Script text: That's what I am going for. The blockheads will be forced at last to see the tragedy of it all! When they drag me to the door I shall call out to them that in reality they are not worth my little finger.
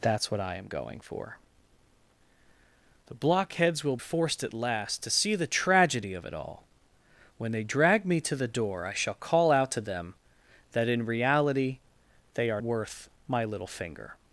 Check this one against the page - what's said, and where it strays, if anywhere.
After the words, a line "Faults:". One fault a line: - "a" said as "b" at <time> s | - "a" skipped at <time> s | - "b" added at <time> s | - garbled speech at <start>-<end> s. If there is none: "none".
That's what I am going for. The blockheads will forced at last to see the tragedy of it all! When they drag me to the door I shall call out to them that in reality they are worth my little finger.
Faults:
- "be" skipped at 4.0 s
- "not" skipped at 12.6 s